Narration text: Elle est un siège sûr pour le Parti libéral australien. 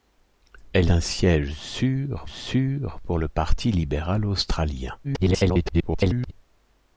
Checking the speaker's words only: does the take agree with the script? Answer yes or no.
no